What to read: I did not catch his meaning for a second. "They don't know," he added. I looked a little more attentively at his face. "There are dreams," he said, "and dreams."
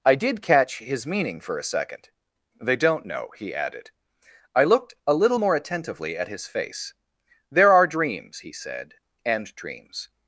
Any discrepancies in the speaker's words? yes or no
yes